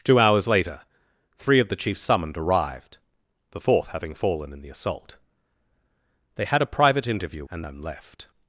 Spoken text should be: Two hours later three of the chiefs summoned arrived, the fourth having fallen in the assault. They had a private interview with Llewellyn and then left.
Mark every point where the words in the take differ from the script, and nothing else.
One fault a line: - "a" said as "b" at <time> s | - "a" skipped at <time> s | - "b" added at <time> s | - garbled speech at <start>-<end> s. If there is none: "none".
- "with Llewellyn" skipped at 7.5 s